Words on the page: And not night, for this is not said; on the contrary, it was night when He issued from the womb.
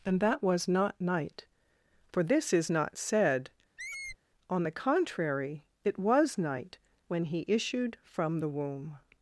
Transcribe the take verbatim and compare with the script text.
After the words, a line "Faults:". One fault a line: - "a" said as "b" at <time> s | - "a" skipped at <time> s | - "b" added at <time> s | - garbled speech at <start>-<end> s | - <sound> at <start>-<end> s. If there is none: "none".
And that was not night, for this is not said; on the contrary, it was night when He issued from the womb.
Faults:
- "that was" added at 0.2 s
- squeak at 3.8-4.2 s